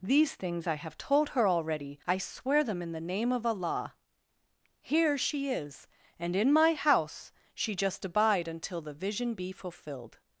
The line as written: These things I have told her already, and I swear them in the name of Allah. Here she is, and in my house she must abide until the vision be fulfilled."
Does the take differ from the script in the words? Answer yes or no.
yes